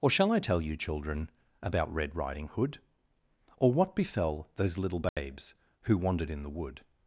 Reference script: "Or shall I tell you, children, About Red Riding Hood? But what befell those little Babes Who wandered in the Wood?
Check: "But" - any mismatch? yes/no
yes